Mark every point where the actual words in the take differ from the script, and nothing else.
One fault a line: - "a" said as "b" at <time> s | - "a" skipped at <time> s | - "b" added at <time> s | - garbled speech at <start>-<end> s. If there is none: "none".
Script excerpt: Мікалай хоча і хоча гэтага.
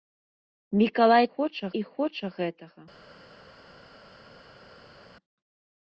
none